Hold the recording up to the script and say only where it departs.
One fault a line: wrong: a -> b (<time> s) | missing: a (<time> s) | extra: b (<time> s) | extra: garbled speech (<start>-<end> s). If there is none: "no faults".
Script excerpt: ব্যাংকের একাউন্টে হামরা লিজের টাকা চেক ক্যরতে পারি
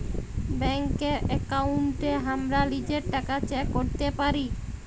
no faults